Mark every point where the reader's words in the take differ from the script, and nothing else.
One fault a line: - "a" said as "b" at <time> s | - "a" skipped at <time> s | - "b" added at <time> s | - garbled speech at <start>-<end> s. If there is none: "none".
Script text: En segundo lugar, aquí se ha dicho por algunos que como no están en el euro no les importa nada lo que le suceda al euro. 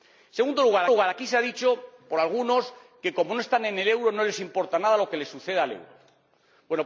- "lugar" added at 0.9 s